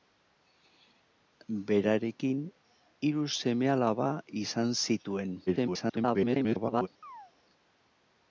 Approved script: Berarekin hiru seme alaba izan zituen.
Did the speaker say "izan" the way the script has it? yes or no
yes